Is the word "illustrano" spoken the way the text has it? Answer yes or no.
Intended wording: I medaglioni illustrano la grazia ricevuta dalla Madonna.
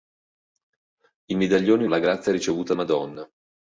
no